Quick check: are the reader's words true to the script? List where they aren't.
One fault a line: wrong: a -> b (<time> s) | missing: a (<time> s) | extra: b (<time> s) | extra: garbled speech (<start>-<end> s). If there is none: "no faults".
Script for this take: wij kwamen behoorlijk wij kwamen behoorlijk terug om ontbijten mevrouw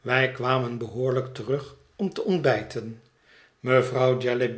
missing: wij kwamen behoorlijk (1.3 s)
extra: te (2.1 s)